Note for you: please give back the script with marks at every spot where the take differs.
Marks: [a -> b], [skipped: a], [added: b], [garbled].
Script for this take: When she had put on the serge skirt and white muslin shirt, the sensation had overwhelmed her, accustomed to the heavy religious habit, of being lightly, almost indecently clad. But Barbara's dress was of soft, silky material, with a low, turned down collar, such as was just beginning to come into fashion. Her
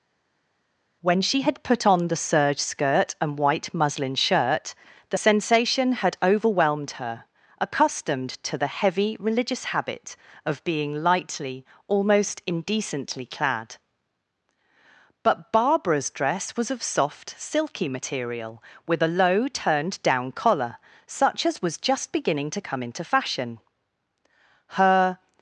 When she had put on the serge skirt and white muslin shirt, the sensation had overwhelmed her, accustomed to the heavy religious habit, of being lightly, almost indecently clad. But Barbara's dress was of soft, silky material, with a low, turned down collar, such as was just beginning to come into fashion. Her